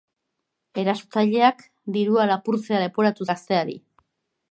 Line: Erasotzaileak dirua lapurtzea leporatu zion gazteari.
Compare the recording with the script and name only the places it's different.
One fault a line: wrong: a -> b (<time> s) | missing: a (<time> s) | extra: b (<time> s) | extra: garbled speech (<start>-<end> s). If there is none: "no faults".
missing: zion (3.3 s)